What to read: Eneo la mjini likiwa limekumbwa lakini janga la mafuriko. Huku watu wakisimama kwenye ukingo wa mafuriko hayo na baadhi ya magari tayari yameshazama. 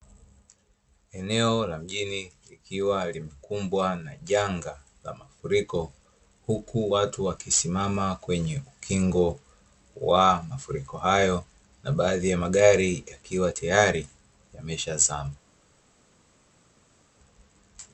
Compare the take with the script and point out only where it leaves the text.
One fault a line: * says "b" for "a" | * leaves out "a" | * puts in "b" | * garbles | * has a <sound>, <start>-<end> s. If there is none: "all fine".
* says "na" for "lakini"
* puts in "yakiwa"